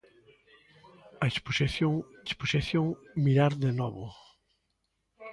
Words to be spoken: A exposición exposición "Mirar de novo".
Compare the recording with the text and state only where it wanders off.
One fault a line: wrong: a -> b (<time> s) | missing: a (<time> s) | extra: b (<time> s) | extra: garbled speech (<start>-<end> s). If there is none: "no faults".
no faults